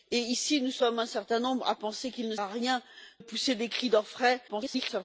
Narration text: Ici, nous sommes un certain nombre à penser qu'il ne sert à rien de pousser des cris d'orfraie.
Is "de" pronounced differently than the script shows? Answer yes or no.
yes